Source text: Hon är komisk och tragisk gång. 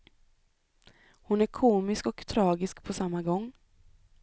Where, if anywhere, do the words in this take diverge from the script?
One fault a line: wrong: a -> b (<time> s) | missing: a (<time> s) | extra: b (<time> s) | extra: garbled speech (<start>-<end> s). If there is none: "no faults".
extra: på samma (2.8 s)